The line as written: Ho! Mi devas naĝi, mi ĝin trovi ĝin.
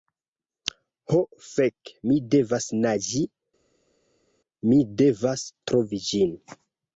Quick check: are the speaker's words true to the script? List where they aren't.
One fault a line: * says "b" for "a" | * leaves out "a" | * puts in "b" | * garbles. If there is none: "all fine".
* puts in "fek"
* says "devas" for "ĝin"